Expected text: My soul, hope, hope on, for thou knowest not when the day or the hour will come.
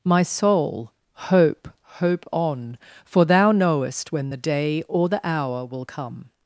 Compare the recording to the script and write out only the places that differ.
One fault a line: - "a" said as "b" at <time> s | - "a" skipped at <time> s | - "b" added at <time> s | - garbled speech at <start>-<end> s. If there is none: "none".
- "not" skipped at 4.1 s